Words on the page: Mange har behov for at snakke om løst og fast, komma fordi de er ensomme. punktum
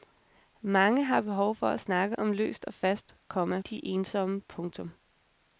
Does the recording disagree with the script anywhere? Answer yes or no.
yes